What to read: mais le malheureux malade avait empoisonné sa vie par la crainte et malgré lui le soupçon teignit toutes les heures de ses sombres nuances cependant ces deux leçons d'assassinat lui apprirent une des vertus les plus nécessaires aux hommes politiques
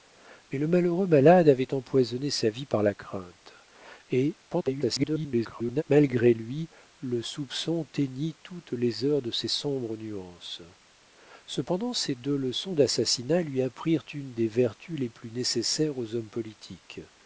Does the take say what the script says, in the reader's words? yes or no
no